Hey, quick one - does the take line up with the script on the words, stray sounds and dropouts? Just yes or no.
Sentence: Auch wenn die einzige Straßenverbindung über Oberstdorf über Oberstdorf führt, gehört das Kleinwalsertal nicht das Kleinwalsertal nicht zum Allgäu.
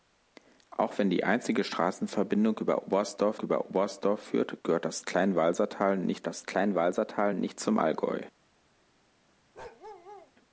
no